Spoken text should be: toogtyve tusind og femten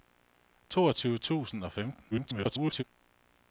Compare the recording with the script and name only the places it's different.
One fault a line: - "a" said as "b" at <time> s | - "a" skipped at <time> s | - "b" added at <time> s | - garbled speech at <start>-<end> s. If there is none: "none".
- garbled speech at 2.1-2.8 s